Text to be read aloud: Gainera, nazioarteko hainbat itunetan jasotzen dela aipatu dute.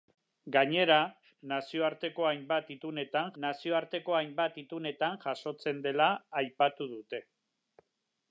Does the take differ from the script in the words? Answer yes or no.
yes